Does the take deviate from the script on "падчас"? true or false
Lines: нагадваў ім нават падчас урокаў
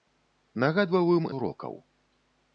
true